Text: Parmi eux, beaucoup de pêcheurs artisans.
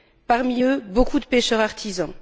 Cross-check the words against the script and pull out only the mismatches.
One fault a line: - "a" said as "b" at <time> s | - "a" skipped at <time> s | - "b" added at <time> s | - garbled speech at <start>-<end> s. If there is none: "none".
none